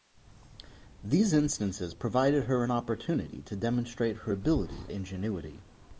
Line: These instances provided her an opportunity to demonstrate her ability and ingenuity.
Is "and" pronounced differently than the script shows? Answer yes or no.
yes